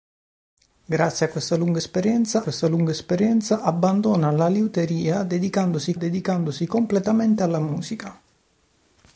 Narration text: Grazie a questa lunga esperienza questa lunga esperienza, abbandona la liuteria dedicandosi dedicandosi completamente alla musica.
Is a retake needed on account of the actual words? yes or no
no